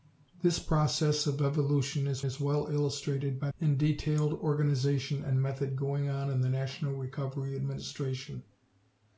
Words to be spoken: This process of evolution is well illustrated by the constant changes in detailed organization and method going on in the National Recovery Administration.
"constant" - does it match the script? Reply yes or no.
no